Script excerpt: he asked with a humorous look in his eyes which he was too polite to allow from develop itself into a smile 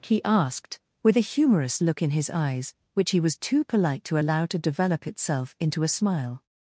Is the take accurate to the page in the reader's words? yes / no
no